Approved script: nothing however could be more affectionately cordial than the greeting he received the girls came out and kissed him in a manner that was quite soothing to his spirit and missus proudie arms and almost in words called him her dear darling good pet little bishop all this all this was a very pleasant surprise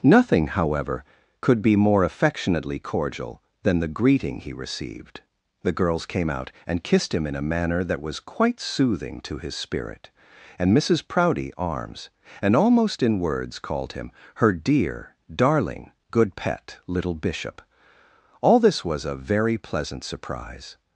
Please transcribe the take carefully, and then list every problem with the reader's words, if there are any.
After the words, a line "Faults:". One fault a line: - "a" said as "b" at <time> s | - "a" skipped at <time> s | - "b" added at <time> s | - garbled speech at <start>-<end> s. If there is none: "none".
nothing however could be more affectionately cordial than the greeting he received the girls came out and kissed him in a manner that was quite soothing to his spirit and missus proudie arms and almost in words called him her dear darling good pet little bishop all this was a very pleasant surprise
Faults:
- "all this" skipped at 18.8 s